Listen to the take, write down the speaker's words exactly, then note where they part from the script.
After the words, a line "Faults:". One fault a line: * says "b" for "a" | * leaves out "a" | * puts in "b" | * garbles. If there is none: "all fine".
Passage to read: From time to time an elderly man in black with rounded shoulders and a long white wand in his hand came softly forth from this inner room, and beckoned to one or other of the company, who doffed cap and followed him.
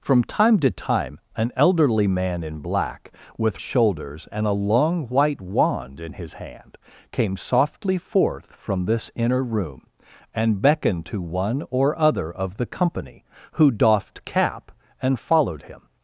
From time to time an elderly man in black with shoulders and a long white wand in his hand came softly forth from this inner room, and beckoned to one or other of the company, who doffed cap and followed him.
Faults:
* leaves out "rounded"